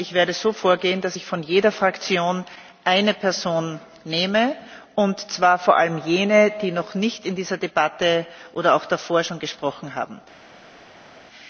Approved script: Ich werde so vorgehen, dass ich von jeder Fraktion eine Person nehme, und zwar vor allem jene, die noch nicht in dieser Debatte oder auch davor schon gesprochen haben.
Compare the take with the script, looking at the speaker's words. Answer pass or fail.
pass